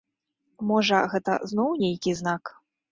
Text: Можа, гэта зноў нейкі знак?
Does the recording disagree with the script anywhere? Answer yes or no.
no